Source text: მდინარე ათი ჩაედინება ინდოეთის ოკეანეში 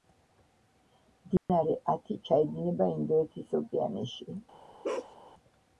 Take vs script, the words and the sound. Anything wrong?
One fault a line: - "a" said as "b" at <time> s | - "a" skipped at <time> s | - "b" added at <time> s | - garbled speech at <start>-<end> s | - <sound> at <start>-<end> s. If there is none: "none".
- dropout at 1.4-1.5 s
- bark at 4.8-5.2 s